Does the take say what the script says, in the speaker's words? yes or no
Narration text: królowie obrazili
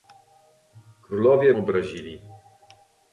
yes